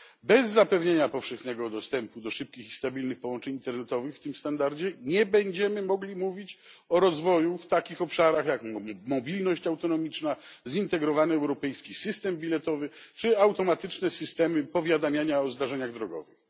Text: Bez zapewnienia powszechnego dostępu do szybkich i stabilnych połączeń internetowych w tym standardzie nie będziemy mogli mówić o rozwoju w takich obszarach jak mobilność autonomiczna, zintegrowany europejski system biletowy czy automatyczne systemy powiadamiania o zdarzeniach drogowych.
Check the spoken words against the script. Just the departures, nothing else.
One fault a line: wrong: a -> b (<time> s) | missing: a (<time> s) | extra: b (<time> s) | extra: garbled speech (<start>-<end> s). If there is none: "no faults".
no faults